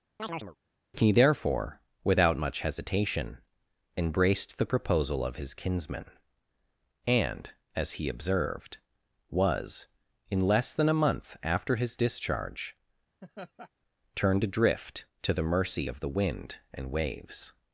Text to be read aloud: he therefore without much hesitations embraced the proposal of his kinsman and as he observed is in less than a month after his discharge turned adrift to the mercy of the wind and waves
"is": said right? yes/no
no